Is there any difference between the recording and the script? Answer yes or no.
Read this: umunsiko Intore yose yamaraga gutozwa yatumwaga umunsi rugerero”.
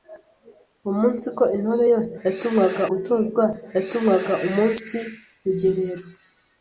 yes